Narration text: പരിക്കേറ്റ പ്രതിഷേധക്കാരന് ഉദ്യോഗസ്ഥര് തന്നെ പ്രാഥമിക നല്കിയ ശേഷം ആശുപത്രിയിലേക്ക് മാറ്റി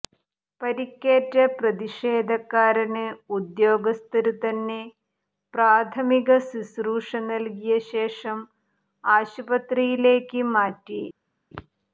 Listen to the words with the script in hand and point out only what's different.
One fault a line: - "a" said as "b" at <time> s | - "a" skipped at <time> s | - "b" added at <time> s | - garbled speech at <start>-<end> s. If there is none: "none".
- "ശുശ്രൂഷ" added at 6.5 s